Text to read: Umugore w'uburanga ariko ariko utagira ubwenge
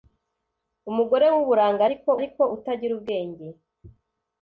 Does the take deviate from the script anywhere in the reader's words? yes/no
no